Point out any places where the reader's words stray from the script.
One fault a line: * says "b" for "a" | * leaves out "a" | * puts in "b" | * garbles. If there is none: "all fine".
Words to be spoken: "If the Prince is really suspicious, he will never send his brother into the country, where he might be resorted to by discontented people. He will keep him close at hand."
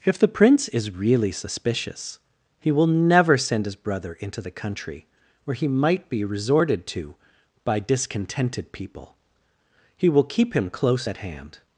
all fine